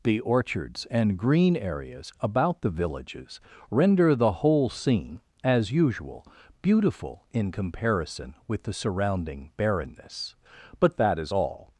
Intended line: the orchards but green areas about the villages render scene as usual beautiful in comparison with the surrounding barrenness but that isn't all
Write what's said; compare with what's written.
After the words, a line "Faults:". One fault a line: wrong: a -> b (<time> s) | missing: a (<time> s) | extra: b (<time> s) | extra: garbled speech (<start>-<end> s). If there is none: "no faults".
the orchards and green areas about the villages render the whole scene as usual beautiful in comparison with the surrounding barrenness but that is all
Faults:
wrong: but -> and (0.9 s)
extra: the whole (4.2 s)
wrong: isn't -> is (11.2 s)